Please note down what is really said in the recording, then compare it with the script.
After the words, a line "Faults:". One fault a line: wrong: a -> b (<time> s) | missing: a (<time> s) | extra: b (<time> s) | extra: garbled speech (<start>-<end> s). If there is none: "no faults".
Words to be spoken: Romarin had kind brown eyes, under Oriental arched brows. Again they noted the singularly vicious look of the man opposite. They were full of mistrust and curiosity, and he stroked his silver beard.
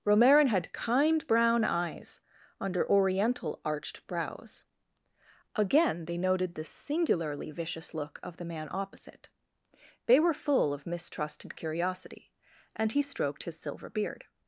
Romarin had kind brown eyes, under Oriental arched brows. Again they noted the singularly vicious look of the man opposite. They were full of mistrust and curiosity, and he stroked his silver beard.
Faults:
no faults